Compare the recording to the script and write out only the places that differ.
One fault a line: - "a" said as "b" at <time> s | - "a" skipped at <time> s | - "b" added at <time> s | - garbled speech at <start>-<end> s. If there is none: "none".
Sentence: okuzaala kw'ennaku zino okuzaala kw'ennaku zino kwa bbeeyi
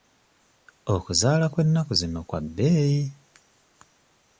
- "okuzaala kw'ennaku zino" skipped at 2.2 s